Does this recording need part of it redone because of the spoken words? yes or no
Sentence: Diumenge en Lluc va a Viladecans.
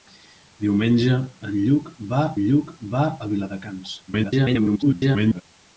yes